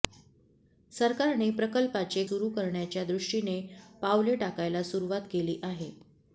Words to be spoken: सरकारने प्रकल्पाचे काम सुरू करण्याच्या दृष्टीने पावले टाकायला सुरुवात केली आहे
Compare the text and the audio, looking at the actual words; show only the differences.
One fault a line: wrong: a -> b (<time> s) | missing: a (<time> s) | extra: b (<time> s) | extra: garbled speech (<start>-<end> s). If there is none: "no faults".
missing: काम (2.2 s)